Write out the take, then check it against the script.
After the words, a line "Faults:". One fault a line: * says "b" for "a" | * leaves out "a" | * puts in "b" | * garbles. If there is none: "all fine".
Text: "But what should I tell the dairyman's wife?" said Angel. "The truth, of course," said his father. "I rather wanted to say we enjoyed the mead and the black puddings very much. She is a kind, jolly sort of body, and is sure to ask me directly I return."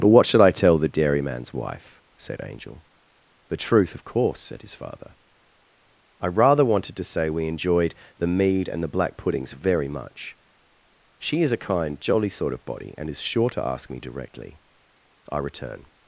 "But what should I tell the dairyman's wife?" said Angel. "The truth, of course," said his father. "I rather wanted to say we enjoyed the mead and the black puddings very much. She is a kind, jolly sort of body, and is sure to ask me directly I return."
Faults:
all fine